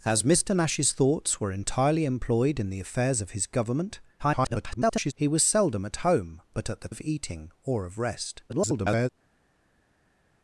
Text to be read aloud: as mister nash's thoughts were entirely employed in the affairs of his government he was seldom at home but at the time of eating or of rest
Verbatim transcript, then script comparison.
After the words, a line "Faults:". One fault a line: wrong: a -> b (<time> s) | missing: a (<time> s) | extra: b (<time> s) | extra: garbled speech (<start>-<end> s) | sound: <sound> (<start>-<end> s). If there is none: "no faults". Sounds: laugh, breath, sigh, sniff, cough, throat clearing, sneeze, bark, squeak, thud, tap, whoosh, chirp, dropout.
as mister nash's thoughts were entirely employed in the affairs of his government [garbled] he was seldom at home but at the of eating or of rest [garbled]
Faults:
extra: garbled speech (4.2-5.1 s)
missing: time (6.9 s)
extra: garbled speech (8.5-9.1 s)